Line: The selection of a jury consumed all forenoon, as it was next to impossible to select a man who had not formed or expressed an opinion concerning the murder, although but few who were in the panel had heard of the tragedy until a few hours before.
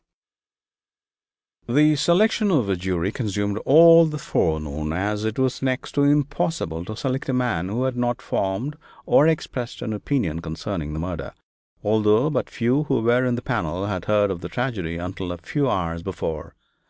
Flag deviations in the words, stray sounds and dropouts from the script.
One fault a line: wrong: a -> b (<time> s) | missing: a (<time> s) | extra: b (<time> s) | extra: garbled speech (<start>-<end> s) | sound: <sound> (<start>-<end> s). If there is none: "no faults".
extra: the (4.0 s)